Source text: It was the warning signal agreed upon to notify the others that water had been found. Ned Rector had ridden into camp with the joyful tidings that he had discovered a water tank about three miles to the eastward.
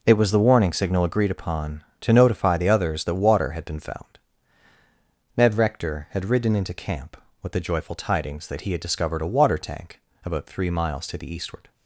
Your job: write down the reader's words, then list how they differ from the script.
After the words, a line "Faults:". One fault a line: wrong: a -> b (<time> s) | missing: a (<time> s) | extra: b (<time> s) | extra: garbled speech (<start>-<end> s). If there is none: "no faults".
It was the warning signal agreed upon to notify the others that water had been found. Ned Rector had ridden into camp with the joyful tidings that he had discovered a water tank about three miles to the eastward.
Faults:
no faults